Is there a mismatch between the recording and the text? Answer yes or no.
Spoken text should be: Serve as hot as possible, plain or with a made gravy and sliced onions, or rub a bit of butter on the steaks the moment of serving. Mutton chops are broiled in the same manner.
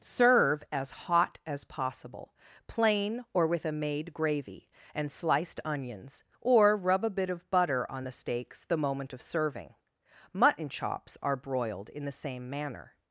no